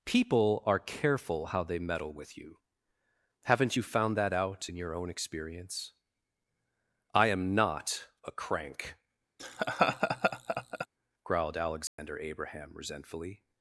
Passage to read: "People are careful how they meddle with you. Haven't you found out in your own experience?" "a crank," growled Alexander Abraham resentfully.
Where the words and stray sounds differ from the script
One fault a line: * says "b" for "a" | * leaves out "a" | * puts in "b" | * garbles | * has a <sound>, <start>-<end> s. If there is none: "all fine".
* puts in "that"
* puts in "I am NOT"
* has a laugh, 9.4-10.9 s
* has a dropout, 11.9-12.0 s